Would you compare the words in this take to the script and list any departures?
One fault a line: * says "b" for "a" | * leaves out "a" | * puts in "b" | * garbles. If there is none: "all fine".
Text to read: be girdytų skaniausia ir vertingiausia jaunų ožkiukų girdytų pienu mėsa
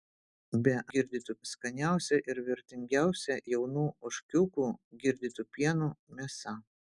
all fine